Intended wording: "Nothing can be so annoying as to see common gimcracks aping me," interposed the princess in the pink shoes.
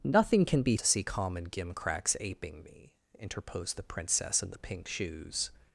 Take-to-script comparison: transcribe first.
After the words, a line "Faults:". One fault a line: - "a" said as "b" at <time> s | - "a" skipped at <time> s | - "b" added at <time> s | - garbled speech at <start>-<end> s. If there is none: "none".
"Nothing can be to see common gimcracks aping me," interposed the princess in the pink shoes.
Faults:
- "so annoying as" skipped at 0.8 s